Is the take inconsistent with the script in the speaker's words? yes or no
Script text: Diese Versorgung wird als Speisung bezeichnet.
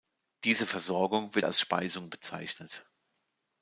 no